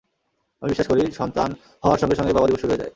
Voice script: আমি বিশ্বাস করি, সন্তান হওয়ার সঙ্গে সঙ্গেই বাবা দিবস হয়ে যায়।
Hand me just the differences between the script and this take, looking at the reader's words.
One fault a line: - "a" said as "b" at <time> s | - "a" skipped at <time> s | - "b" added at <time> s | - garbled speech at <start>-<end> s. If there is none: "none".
- "শুরু" added at 2.6 s